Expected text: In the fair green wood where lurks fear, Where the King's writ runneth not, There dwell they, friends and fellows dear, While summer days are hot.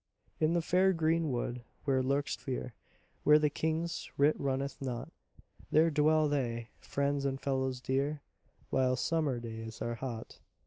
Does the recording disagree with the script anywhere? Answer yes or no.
no